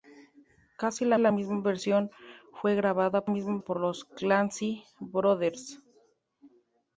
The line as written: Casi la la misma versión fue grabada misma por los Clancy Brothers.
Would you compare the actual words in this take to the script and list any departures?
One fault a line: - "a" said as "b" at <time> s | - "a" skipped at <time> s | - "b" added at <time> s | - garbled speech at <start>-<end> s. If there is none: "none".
none